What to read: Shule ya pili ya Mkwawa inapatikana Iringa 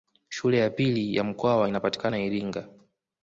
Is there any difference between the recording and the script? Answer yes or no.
no